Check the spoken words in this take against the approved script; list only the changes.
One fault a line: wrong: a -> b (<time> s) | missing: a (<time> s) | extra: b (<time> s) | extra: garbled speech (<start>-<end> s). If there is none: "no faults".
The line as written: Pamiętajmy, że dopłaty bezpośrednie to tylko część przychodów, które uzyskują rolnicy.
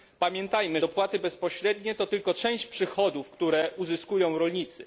missing: że (0.8 s)